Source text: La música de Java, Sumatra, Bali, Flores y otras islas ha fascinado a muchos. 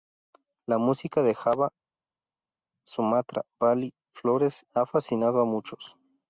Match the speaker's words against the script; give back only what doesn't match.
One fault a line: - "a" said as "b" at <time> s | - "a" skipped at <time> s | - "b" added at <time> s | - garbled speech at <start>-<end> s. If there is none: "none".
- "y otras islas" skipped at 4.6 s